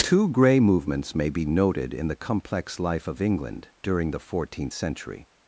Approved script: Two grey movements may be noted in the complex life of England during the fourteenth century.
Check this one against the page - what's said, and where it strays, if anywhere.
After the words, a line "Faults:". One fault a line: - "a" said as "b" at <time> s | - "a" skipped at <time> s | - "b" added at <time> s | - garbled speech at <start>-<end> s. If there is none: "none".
Two grey movements may be noted in the complex life of England during the fourteenth century.
Faults:
none